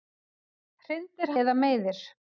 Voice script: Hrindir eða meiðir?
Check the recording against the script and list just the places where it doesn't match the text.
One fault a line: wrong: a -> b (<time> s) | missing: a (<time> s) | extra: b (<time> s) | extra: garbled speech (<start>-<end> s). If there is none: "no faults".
no faults